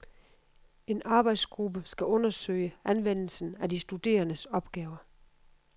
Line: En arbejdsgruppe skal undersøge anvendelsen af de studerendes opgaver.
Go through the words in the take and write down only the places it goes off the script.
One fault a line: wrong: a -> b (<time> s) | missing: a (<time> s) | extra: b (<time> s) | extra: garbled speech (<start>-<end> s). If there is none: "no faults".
no faults